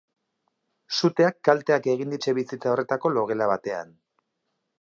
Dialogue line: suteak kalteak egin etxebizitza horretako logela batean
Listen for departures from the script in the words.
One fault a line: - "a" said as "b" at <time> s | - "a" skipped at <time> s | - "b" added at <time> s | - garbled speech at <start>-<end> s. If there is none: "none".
none